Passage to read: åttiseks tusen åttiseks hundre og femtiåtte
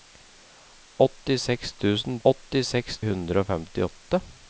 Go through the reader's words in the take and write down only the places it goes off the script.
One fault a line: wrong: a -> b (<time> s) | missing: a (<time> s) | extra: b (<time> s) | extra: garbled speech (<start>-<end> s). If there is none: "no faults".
no faults